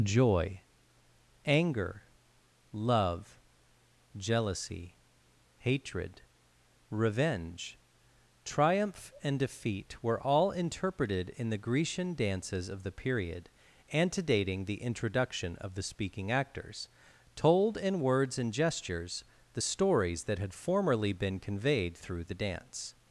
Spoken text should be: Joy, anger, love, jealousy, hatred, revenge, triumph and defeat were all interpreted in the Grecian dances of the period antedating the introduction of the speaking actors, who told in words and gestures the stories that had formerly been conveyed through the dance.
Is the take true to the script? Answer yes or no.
no